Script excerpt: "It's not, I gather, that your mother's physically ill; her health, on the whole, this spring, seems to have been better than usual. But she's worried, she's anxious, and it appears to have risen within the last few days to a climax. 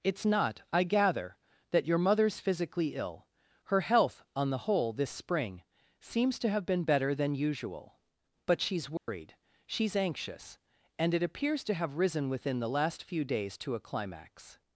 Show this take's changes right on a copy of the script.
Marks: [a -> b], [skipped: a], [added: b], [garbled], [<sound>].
"It's not, I gather, that your mother's physically ill; her health, on the whole, this spring, seems to have been better than usual. But she's worried, [dropout] she's anxious, and it appears to have risen within the last few days to a climax.